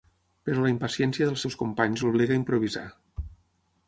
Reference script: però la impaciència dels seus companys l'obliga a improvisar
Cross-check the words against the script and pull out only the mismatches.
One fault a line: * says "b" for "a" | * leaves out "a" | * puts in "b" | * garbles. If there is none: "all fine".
all fine